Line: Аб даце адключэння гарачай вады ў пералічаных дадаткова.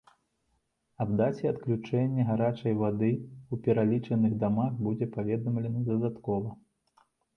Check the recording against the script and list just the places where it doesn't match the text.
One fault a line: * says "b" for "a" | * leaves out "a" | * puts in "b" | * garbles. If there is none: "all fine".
* puts in "дамах будзе паведамлена"